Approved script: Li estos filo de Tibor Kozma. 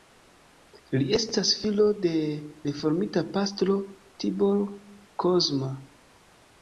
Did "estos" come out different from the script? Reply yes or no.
yes